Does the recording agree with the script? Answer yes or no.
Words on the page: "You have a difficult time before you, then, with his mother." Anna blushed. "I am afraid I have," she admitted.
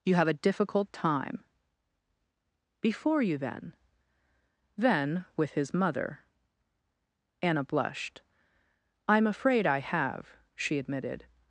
no